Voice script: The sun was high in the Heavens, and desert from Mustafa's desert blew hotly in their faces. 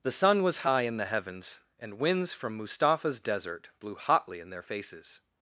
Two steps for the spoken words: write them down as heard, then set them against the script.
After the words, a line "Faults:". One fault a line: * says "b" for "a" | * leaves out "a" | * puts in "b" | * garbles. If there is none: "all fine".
The sun was high in the Heavens, and winds from Mustafa's desert blew hotly in their faces.
Faults:
* says "winds" for "desert"